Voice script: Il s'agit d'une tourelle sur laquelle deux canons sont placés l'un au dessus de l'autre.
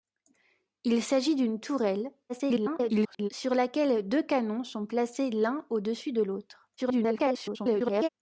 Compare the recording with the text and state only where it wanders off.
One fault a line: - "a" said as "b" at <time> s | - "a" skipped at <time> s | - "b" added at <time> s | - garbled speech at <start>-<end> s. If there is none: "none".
- garbled speech at 2.3-3.3 s
- garbled speech at 6.8-8.1 s